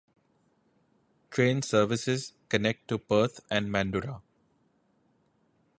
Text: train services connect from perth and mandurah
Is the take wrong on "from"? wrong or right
wrong